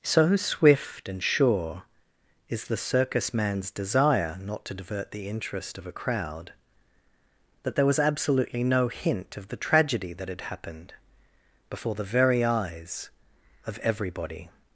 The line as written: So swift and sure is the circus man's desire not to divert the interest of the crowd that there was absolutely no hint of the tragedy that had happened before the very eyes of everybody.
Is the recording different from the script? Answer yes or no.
yes